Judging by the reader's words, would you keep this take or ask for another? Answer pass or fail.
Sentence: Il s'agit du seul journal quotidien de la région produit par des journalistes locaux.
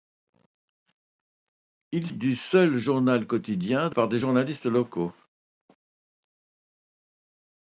fail